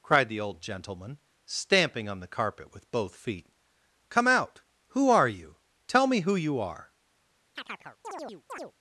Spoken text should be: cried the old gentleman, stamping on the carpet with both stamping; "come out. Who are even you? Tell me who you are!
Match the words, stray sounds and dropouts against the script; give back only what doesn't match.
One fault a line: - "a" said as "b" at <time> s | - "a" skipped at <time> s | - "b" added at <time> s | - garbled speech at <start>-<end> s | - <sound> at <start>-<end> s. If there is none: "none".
- "stamping" said as "feet" at 3.1 s
- "even" skipped at 5.3 s
- chirp at 7.6-8.7 s